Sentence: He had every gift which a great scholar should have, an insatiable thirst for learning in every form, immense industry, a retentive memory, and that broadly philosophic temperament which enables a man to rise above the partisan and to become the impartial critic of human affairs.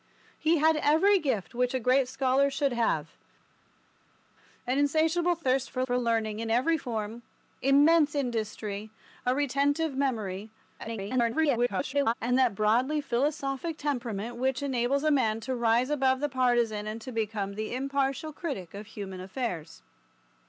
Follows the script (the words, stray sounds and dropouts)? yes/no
no